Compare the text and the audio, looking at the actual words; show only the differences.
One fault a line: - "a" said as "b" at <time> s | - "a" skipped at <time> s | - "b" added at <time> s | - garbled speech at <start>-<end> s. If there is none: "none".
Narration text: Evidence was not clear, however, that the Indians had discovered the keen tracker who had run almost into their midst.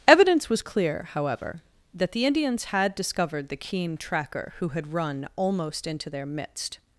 - "not" skipped at 0.6 s